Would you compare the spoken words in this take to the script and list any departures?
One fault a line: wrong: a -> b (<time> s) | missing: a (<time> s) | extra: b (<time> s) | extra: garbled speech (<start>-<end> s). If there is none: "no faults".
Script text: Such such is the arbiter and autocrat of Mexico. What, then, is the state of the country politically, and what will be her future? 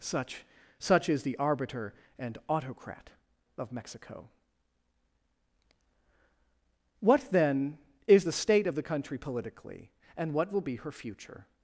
no faults